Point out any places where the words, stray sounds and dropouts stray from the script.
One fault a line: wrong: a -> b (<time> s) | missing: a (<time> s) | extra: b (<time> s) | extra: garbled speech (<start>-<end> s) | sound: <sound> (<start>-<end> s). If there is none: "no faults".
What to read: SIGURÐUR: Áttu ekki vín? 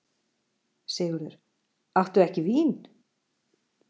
no faults